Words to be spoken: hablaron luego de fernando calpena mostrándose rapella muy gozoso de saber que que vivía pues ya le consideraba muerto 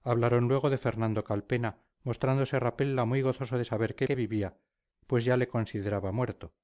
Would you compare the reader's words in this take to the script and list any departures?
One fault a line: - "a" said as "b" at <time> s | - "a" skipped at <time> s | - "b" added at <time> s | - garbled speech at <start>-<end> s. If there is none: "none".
none